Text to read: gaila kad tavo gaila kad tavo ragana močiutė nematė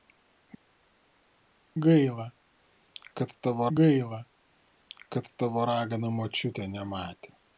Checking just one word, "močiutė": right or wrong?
right